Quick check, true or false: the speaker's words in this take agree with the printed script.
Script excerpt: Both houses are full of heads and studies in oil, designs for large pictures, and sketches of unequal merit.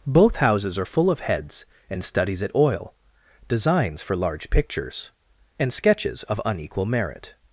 false